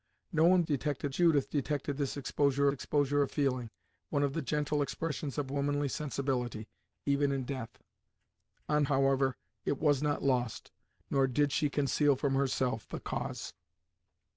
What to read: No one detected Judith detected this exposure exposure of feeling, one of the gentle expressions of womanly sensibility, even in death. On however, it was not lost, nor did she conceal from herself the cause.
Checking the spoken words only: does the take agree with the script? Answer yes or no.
yes